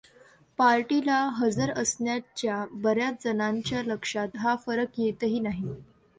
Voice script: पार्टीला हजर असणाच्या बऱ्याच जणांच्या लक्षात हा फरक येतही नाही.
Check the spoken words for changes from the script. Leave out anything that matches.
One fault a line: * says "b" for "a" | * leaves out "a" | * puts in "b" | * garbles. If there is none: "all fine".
all fine